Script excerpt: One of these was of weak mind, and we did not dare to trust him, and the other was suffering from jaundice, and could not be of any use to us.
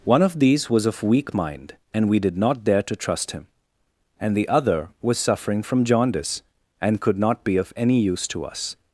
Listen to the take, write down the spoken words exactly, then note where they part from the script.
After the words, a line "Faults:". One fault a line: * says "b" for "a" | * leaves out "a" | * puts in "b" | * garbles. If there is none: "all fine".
One of these was of weak mind, and we did not dare to trust him, and the other was suffering from jaundice, and could not be of any use to us.
Faults:
all fine